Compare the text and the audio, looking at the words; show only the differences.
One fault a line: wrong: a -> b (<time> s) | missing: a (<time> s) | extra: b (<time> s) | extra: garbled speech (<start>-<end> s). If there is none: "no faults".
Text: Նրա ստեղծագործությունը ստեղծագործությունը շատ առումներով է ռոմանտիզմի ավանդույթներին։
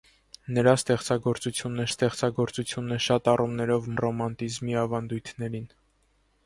no faults